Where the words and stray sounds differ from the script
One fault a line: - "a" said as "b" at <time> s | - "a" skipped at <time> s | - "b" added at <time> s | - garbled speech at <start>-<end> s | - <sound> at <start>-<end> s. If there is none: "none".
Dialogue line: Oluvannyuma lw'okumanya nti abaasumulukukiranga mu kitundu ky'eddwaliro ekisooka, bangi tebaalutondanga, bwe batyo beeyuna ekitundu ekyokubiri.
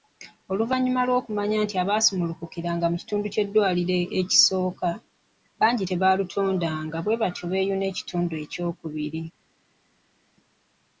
none